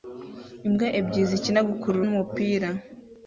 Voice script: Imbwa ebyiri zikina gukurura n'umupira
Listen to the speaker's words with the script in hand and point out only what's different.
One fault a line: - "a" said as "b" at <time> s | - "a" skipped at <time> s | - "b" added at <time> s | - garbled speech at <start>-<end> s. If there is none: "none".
none